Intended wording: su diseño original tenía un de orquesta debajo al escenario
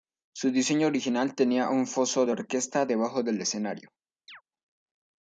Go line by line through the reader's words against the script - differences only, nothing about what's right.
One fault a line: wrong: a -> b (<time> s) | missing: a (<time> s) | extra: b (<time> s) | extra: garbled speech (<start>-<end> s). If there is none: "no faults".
extra: foso (1.9 s)
wrong: al -> del (3.2 s)